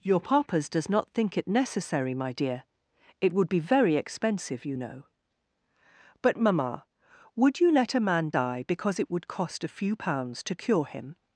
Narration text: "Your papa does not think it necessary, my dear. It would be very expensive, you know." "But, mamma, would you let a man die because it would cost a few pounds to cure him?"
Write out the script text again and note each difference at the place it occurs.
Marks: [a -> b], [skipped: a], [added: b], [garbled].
"Your [papa -> papas] does not think it necessary, my dear. It would be very expensive, you know." "But, mamma, would you let a man die because it would cost a few pounds to cure him?"